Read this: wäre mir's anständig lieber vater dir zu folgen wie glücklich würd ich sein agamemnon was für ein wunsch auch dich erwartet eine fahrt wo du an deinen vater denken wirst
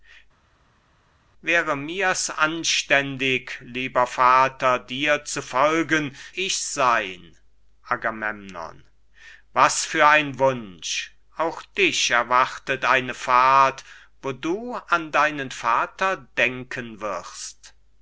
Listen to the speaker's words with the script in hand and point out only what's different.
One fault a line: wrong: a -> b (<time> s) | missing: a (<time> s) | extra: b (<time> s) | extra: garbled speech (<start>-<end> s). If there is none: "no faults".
missing: wie glücklich würd (6.2 s)